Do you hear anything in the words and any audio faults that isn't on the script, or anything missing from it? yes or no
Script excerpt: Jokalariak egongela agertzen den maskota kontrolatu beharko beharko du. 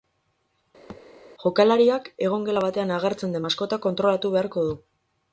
yes